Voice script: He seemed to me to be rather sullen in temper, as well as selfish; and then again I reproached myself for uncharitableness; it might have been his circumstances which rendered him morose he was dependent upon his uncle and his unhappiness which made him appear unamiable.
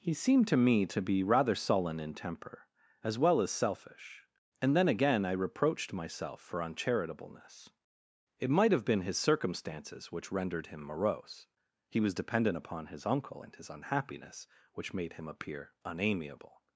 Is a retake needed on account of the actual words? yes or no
no